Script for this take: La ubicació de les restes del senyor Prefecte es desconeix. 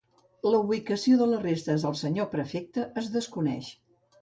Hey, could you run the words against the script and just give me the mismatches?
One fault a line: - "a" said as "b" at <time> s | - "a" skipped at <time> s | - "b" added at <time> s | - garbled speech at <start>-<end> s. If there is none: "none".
none